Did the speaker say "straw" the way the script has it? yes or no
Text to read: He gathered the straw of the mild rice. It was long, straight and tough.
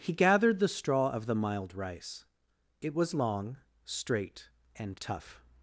yes